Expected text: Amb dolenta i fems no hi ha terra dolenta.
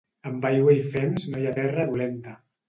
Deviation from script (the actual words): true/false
true